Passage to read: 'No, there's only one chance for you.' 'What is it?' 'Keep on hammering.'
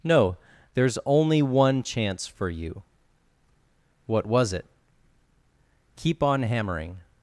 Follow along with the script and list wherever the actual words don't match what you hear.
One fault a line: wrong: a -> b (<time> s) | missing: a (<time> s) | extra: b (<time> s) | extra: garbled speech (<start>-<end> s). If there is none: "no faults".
wrong: is -> was (4.3 s)